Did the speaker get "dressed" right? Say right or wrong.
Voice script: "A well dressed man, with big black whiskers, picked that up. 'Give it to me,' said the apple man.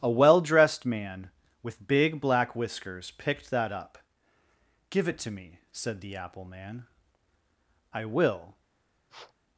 right